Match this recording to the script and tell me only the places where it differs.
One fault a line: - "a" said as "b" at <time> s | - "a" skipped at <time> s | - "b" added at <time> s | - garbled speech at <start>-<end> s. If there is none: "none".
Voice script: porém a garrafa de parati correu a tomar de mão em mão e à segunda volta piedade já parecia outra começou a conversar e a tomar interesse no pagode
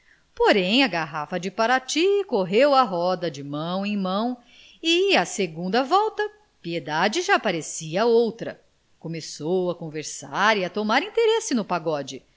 - "tomar" said as "roda" at 2.8 s